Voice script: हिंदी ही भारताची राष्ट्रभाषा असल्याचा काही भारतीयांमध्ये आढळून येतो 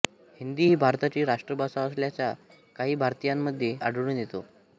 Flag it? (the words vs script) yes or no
no